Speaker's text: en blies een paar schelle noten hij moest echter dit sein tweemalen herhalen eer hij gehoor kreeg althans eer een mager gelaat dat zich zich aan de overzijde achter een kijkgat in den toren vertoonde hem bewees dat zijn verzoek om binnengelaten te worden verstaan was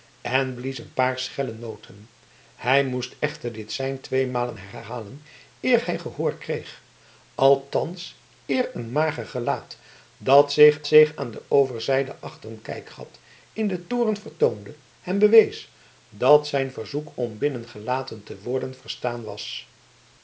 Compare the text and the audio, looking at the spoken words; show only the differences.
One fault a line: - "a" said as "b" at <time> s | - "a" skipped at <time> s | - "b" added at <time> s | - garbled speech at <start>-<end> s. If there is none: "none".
none